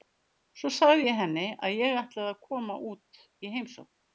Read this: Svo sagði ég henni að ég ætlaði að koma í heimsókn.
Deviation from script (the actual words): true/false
true